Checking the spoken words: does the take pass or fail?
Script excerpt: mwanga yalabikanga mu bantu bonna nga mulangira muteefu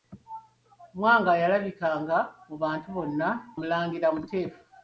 fail